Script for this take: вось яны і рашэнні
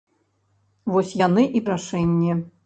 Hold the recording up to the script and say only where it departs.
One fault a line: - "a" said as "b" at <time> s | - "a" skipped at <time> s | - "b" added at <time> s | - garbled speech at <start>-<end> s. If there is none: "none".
none